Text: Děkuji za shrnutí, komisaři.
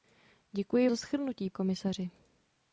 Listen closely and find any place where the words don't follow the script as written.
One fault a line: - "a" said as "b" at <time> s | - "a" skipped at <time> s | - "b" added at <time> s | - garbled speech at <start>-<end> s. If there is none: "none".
none